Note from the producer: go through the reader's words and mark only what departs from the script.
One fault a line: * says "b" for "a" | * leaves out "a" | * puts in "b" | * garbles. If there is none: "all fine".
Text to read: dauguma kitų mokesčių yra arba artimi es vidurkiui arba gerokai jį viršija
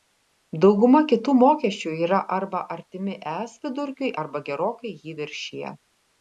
all fine